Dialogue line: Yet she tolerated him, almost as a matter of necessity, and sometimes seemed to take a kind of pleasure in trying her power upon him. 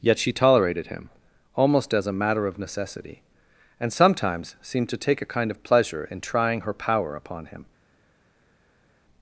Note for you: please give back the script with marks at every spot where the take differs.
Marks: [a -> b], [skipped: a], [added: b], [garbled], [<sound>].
Yet she tolerated him, almost as a matter of necessity, and sometimes seemed to take a kind of pleasure in trying her power upon him.